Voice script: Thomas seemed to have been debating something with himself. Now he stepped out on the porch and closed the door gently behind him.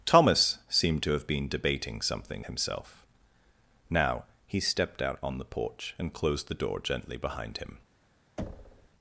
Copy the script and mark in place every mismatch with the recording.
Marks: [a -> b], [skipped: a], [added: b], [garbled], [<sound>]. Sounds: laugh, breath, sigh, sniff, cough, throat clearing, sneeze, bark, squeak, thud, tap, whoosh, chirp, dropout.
Thomas seemed to have been debating something [skipped: with] himself. Now he stepped out on the porch and closed the door gently behind him. [thud]